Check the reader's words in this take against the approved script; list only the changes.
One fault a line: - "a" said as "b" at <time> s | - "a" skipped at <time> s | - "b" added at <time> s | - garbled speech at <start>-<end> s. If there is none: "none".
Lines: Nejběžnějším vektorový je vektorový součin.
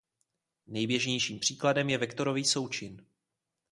- "vektorový" said as "příkladem" at 1.4 s